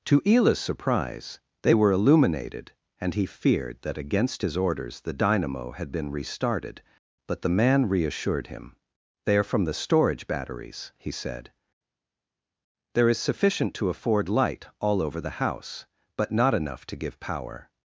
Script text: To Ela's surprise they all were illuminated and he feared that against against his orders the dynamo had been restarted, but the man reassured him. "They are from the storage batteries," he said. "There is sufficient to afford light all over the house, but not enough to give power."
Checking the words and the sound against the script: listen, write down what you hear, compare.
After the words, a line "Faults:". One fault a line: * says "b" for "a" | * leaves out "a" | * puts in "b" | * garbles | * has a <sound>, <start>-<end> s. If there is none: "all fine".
To Ela's surprise they were illuminated and he feared that against his orders the dynamo had been restarted, but the man reassured him. "They are from the storage batteries," he said. "There is sufficient to afford light all over the house, but not enough to give power."
Faults:
* leaves out "all"
* leaves out "against"